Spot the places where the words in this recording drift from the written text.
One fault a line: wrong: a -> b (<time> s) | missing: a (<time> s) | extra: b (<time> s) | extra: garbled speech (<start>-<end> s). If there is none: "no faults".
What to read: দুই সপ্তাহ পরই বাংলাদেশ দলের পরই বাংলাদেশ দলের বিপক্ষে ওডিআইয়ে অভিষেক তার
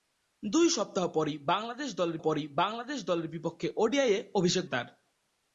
no faults